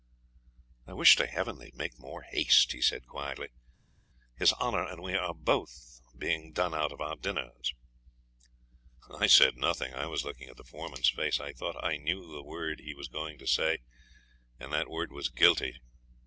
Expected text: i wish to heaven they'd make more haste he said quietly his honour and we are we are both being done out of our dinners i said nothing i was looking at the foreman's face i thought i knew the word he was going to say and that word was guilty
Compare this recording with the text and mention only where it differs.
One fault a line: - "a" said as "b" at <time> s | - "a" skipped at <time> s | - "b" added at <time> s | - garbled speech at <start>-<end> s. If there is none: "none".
- "we are" skipped at 5.3 s